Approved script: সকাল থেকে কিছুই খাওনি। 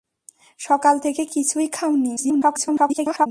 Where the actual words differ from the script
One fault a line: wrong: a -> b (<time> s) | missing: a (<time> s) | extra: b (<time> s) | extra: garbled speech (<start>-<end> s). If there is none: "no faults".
extra: garbled speech (2.2-3.3 s)